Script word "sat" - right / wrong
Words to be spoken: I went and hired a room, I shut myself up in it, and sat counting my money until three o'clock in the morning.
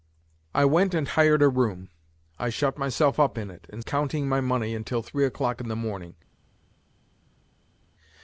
wrong